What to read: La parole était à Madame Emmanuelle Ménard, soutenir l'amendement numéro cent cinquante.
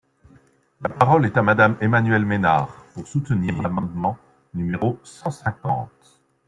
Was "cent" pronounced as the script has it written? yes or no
yes